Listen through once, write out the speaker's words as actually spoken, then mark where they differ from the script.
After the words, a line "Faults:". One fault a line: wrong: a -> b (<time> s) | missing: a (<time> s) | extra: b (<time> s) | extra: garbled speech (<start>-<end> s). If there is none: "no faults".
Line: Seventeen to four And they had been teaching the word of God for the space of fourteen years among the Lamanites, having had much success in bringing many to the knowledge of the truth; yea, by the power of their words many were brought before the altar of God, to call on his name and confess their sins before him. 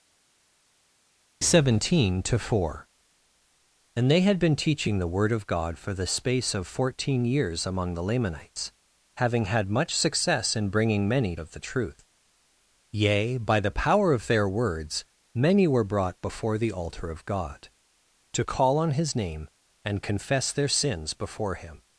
Seventeen to four And they had been teaching the word of God for the space of fourteen years among the Lamanites, having had much success in bringing many of the truth; yea, by the power of their words many were brought before the altar of God, to call on his name and confess their sins before him.
Faults:
missing: to the knowledge (11.3 s)